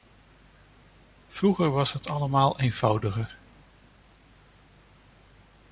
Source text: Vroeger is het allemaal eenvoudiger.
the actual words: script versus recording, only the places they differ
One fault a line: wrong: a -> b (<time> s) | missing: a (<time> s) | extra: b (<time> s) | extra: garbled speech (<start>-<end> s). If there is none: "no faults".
wrong: is -> was (1.7 s)